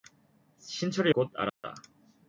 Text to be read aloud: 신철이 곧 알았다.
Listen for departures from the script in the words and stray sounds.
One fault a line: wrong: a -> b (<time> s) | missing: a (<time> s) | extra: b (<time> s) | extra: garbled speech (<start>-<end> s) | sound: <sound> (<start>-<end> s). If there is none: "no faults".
sound: dropout (1.5-1.6 s)